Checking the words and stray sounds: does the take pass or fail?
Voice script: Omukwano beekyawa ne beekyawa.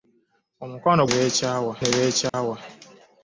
fail